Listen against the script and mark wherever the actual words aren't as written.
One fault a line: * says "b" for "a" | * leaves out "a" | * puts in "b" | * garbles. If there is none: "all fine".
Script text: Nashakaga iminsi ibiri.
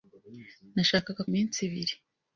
all fine